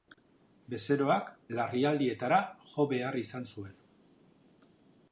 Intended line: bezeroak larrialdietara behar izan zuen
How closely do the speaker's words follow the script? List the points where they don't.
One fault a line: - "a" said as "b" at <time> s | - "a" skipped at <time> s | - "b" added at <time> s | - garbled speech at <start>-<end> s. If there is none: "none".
- "jo" added at 2.7 s